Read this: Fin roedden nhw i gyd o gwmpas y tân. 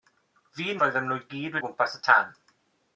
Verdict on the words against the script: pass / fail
pass